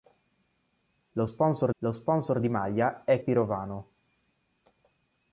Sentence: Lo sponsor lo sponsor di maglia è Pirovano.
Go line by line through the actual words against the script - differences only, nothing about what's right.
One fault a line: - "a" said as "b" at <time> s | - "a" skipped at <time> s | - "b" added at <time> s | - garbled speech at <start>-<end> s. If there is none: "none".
none